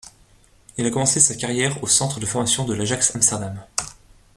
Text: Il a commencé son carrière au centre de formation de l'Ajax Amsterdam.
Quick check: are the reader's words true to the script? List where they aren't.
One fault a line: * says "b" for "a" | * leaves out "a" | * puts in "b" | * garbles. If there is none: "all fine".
* says "sa" for "son"